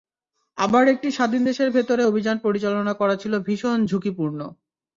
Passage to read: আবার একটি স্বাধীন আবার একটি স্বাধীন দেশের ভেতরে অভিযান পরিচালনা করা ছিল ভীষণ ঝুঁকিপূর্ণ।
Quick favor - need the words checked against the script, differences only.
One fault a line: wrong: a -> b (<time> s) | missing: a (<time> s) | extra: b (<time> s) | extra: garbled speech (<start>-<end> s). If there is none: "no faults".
missing: আবার একটি স্বাধীন (1.4 s)